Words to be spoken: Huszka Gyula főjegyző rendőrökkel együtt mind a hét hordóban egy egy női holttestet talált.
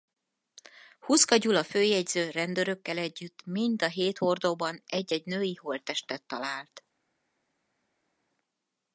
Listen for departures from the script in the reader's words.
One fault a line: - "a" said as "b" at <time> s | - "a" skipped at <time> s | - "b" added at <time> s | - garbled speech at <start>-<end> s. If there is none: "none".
none